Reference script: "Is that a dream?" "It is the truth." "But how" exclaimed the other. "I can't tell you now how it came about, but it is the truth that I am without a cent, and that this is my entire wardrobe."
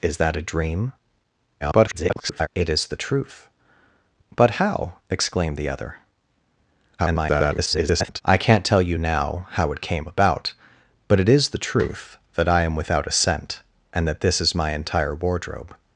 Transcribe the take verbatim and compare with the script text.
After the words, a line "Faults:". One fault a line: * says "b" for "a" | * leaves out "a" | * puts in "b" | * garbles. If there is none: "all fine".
"Is that a dream?" [garbled] "It is the truth." "But how" exclaimed the other. [garbled] "I can't tell you now how it came about, but it is the truth that I am without a cent, and that this is my entire wardrobe."
Faults:
* garbles
* garbles